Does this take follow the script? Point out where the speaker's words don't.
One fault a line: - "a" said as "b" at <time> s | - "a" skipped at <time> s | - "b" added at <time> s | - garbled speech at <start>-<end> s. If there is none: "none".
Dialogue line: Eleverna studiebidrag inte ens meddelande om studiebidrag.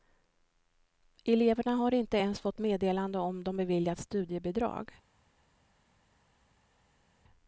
- "studiebidrag" said as "har" at 1.7 s
- "fått" added at 2.4 s
- "de beviljats" added at 3.4 s